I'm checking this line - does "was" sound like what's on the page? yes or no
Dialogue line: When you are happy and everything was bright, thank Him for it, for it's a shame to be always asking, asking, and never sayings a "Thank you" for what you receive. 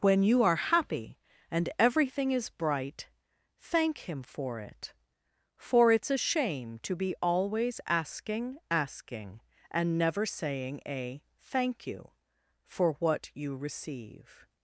no